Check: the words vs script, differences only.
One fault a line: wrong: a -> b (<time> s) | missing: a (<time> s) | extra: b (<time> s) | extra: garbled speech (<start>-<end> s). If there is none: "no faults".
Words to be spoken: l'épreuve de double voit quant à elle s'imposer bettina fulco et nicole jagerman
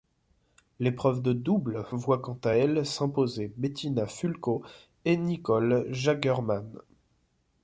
no faults